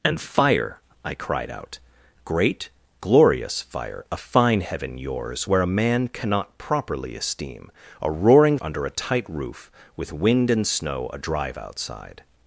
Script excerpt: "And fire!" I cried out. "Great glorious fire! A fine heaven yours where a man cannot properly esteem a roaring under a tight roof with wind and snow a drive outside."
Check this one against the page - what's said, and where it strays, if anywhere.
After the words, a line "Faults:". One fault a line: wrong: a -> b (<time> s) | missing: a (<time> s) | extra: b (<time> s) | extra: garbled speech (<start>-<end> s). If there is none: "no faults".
"And fire!" I cried out. "Great glorious fire! A fine heaven yours where a man cannot properly esteem a roaring under a tight roof with wind and snow a drive outside."
Faults:
no faults